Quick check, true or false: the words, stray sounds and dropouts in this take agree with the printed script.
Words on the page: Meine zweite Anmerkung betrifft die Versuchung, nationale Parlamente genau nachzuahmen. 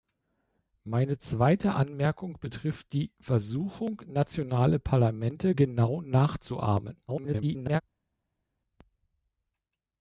false